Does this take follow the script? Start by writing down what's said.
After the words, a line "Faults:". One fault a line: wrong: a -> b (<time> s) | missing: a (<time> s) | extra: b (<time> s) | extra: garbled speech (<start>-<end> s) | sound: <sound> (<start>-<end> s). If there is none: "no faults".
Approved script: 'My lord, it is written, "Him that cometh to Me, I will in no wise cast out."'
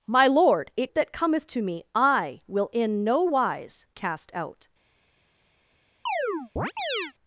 'My lord, it that cometh to Me, I will in no wise cast out."'
Faults:
missing: is written Him (0.9 s)
sound: chirp (6.1-7.1 s)